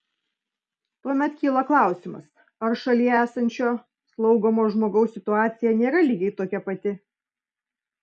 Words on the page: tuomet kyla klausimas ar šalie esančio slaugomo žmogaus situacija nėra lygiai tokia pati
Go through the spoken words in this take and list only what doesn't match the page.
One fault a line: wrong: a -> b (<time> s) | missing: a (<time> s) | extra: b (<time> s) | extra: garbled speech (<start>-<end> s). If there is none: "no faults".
no faults